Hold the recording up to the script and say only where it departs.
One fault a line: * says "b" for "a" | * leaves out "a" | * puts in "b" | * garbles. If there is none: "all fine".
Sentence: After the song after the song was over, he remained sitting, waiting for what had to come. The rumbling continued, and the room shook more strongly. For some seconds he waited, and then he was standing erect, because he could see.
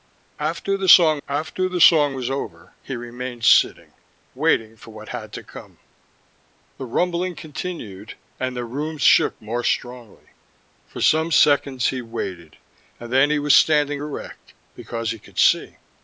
all fine